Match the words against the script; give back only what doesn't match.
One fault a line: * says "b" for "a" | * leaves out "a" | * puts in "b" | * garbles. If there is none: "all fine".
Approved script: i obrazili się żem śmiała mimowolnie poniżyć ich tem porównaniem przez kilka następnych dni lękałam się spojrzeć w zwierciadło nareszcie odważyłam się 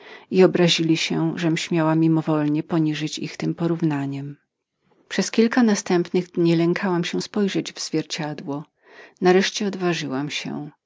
all fine